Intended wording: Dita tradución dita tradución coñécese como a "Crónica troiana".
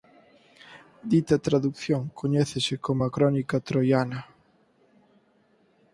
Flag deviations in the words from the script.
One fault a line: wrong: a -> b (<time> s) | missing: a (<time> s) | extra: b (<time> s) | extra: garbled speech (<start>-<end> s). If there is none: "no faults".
missing: dita tradución (2.0 s)